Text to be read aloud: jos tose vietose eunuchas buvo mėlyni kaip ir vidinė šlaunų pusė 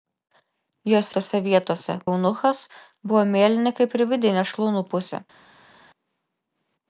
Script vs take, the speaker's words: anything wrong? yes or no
no